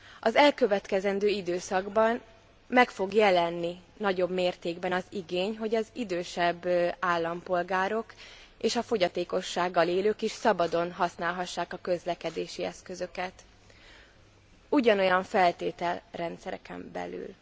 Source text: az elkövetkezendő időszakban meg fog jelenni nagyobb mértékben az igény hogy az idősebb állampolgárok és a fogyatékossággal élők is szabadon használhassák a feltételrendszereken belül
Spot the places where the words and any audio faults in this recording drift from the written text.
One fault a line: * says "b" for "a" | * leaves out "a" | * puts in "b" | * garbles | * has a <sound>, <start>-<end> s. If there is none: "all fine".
* puts in "közlekedési eszközöket ugyanolyan"